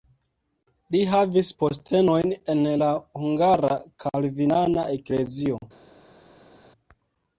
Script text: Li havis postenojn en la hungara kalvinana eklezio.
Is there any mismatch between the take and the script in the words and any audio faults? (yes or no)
no